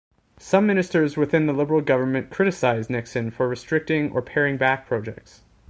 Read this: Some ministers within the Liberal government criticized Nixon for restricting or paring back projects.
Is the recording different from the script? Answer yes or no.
no